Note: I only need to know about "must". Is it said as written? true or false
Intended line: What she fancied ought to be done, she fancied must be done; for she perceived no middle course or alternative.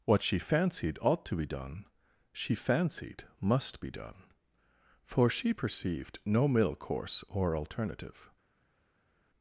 true